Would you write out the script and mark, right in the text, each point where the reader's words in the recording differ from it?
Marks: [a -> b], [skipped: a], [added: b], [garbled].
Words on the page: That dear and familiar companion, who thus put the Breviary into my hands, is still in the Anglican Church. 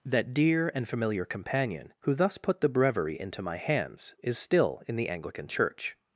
That dear and familiar companion, who thus put the Breviary into my hands, is still in the Anglican Church.